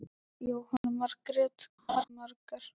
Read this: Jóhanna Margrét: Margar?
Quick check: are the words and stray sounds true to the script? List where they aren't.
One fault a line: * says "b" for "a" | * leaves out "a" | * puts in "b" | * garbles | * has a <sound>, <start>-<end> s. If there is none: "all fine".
* has a dropout, 0.8-0.8 s
* has a laugh, 1.9-2.0 s